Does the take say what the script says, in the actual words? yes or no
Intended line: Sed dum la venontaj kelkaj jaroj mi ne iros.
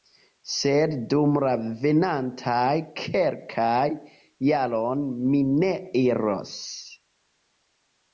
yes